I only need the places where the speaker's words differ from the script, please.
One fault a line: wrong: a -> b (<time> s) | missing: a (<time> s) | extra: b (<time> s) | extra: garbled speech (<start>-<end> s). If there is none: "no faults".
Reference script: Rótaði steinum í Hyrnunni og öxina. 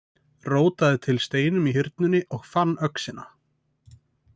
extra: til (1.1 s)
extra: fann (2.6 s)